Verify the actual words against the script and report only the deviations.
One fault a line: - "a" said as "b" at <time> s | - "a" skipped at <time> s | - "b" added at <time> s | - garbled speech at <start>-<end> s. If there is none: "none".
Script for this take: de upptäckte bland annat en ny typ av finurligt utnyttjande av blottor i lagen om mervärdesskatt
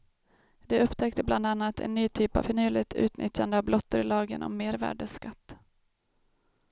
none